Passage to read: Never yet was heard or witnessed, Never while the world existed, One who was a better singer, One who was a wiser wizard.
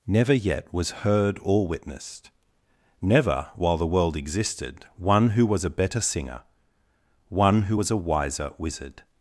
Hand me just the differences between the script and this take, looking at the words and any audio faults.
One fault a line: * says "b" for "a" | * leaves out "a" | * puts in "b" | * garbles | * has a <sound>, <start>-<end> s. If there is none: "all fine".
all fine